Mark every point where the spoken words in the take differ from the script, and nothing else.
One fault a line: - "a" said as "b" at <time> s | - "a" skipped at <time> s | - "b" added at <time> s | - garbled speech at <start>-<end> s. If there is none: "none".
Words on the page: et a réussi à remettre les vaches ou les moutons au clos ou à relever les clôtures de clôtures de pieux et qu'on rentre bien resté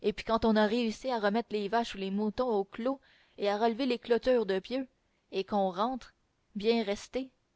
- "puis quand on" added at 0.1 s
- "ou" said as "et" at 3.4 s
- "clôtures de" skipped at 4.6 s